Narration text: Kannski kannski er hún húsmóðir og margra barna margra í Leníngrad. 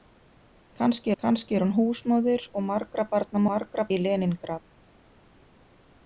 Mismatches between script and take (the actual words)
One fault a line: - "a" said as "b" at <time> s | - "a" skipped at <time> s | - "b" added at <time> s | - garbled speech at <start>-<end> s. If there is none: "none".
none